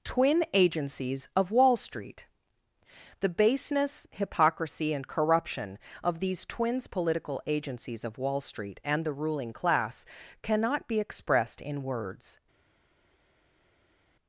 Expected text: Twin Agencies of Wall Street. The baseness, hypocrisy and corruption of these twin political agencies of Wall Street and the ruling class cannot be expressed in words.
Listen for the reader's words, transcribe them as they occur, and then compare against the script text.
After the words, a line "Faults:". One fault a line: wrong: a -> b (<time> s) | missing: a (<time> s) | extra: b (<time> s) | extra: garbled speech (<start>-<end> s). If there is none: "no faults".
Twin Agencies of Wall Street. The baseness, hypocrisy and corruption of these twins political agencies of Wall Street and the ruling class cannot be expressed in words.
Faults:
wrong: twin -> twins (6.4 s)